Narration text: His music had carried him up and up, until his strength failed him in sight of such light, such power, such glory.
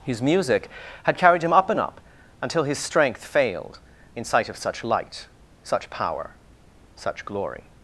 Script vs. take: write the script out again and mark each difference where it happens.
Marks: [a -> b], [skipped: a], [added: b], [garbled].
His music had carried him up and up, until his strength failed [skipped: him] in sight of such light, such power, such glory.